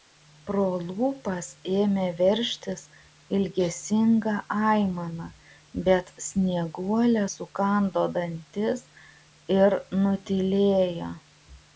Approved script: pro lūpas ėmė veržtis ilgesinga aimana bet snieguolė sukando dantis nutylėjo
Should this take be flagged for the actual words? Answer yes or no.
yes